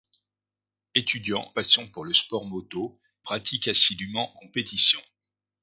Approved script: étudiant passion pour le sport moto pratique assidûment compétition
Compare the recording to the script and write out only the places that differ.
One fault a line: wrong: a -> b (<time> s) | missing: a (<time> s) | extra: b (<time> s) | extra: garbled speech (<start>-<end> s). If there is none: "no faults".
no faults